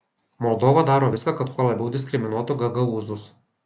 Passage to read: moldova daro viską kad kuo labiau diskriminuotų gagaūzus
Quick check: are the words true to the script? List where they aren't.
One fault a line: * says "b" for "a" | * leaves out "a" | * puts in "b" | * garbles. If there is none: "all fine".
all fine